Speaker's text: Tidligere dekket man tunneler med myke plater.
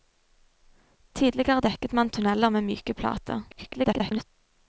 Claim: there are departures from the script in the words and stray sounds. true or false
true